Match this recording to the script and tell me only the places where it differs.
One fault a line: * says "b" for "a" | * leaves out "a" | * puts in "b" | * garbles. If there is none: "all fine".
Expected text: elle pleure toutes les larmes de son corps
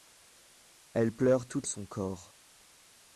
* leaves out "les larmes de"